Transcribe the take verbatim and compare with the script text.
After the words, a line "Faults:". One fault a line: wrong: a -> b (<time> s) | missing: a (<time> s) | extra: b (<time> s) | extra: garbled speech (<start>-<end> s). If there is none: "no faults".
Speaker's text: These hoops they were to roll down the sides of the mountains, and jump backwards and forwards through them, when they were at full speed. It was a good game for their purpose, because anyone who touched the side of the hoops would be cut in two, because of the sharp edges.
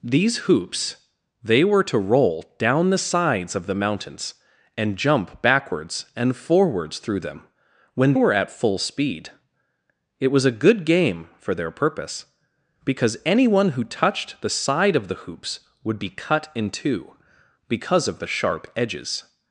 These hoops they were to roll down the sides of the mountains, and jump backwards and forwards through them, when were at full speed. It was a good game for their purpose, because anyone who touched the side of the hoops would be cut in two, because of the sharp edges.
Faults:
missing: they (8.2 s)